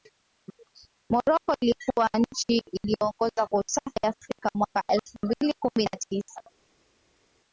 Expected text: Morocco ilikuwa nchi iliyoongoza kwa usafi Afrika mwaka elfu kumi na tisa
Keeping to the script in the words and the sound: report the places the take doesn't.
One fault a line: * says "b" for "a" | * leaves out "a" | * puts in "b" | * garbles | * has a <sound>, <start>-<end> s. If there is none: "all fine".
* puts in "mbili"